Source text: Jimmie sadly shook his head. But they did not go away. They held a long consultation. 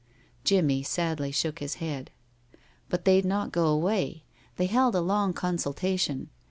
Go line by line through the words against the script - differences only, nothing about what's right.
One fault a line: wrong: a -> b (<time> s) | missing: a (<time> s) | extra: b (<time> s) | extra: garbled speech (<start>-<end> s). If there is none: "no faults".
missing: did (3.2 s)